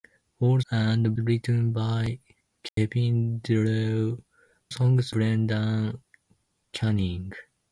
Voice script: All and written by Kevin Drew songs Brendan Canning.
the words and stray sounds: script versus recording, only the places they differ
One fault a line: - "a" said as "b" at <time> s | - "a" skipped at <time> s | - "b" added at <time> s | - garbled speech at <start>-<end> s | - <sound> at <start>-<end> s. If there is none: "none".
- dropout at 2.7-2.8 s